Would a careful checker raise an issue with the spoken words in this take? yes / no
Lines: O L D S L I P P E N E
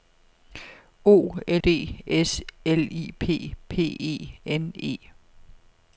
no